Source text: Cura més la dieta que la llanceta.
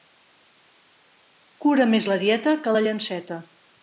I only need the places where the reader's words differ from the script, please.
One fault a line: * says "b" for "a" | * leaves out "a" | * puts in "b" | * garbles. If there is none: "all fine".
all fine